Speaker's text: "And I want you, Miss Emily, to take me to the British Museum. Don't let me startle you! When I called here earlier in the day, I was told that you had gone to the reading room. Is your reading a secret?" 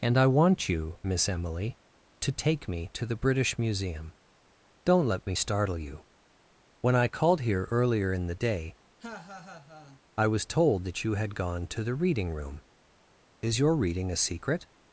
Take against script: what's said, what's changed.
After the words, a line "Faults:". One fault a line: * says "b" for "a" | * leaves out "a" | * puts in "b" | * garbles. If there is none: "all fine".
"And I want you, Miss Emily, to take me to the British Museum. Don't let me startle you! When I called here earlier in the day, I was told that you had gone to the reading room. Is your reading a secret?"
Faults:
all fine